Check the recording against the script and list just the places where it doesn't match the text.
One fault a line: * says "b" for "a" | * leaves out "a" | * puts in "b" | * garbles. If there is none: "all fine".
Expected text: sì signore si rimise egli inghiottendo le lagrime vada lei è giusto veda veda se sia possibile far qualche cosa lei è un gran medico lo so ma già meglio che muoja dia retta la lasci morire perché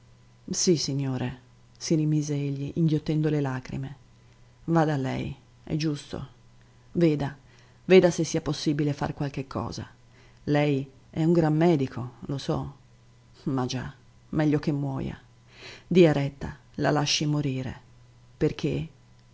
all fine